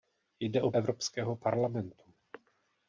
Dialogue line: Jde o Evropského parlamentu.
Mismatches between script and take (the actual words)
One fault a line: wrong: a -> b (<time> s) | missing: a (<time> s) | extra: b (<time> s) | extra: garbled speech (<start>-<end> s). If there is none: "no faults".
no faults